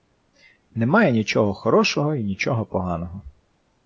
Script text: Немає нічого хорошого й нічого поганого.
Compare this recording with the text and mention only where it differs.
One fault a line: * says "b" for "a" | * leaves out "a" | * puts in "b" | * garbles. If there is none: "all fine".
all fine